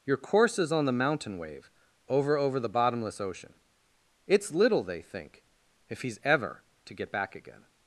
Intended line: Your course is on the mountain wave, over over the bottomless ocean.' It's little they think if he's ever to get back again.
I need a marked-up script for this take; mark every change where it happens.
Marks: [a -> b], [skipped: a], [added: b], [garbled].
Your course is on the mountain wave, over over the bottomless ocean.' It's little they think if he's ever to get back again.